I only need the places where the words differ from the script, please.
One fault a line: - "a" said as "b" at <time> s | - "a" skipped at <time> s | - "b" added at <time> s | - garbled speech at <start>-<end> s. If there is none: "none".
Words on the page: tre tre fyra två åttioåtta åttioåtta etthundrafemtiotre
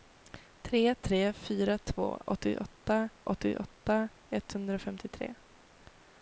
none